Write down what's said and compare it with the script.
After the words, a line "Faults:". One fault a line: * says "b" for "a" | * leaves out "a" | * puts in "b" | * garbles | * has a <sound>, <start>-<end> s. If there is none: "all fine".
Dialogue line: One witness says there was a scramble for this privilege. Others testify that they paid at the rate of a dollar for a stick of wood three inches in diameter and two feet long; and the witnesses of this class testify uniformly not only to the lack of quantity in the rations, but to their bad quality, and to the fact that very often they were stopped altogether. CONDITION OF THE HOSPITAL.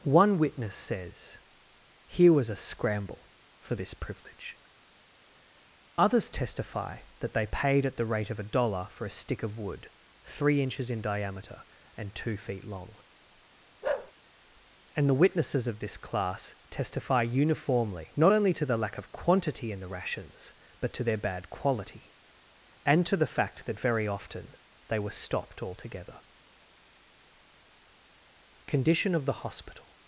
One witness says here was a scramble for this privilege. Others testify that they paid at the rate of a dollar for a stick of wood three inches in diameter and two feet long; and the witnesses of this class testify uniformly not only to the lack of quantity in the rations, but to their bad quality, and to the fact that very often they were stopped altogether. CONDITION OF THE HOSPITAL.
Faults:
* says "here" for "there"
* has a bark, 13.8-14.1 s